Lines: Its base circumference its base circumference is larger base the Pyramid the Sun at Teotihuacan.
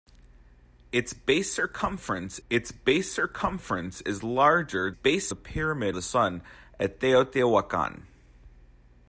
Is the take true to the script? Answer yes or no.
yes